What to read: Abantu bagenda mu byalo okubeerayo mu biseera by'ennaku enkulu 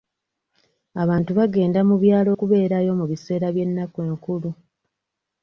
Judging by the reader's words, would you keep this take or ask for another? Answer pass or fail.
pass